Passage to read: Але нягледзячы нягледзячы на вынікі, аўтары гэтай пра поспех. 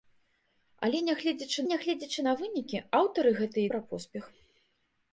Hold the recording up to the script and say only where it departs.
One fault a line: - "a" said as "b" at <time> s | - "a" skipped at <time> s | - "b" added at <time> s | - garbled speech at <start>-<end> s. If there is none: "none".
none